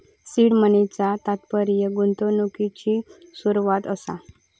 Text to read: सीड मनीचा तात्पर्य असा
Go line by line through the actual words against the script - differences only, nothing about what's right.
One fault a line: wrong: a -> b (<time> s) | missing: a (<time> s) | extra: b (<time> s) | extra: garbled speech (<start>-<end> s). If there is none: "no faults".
extra: गुंतवणुकिची सुरवात (1.9 s)